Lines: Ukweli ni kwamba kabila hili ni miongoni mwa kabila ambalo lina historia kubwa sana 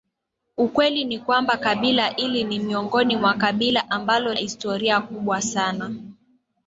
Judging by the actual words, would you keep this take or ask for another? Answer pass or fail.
fail